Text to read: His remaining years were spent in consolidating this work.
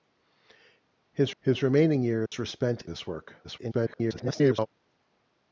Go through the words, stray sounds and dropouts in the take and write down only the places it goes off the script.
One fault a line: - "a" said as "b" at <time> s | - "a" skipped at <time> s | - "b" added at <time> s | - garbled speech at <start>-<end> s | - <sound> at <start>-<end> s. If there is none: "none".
- "his" added at 1.4 s
- dropout at 2.3-2.3 s
- "in consolidating" skipped at 2.8 s
- garbled speech at 3.4-4.7 s